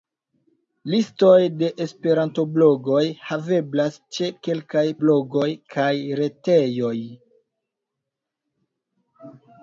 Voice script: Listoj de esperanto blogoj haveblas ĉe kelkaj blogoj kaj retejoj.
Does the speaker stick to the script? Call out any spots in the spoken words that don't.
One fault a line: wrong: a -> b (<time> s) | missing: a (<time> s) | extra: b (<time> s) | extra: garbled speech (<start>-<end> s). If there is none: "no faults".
no faults